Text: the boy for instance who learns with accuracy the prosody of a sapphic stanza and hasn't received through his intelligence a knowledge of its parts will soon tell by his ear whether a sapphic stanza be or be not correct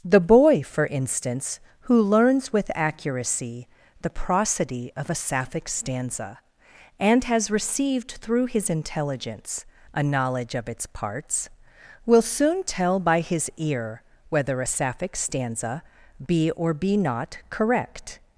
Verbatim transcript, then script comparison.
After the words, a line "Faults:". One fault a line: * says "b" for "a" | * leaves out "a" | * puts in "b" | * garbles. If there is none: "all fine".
the boy for instance who learns with accuracy the prosody of a sapphic stanza and has received through his intelligence a knowledge of its parts will soon tell by his ear whether a sapphic stanza be or be not correct
Faults:
* says "has" for "hasn't"